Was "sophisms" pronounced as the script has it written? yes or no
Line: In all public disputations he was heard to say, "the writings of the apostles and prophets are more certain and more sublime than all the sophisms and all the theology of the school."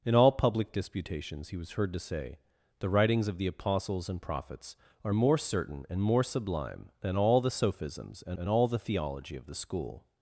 yes